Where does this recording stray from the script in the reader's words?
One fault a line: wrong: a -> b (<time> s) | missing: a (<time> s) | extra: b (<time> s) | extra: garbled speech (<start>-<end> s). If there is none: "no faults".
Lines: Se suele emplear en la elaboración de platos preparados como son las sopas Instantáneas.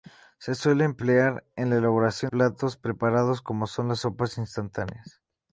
missing: de (2.3 s)